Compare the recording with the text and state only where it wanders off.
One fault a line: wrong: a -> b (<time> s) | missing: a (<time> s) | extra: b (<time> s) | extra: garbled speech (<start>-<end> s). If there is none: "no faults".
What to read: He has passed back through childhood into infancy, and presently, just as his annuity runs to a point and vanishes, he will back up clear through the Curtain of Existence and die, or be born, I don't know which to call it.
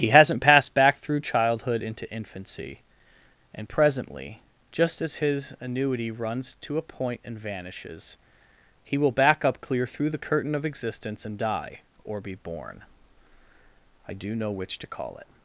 wrong: has -> hasn't (0.1 s)
wrong: don't -> do (14.1 s)